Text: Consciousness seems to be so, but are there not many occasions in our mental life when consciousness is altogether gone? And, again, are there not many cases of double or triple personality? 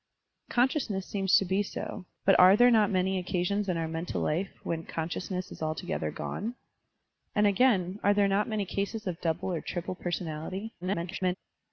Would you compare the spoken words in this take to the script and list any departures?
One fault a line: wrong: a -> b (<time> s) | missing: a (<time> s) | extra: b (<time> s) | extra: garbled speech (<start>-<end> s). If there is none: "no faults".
extra: garbled speech (10.8-11.3 s)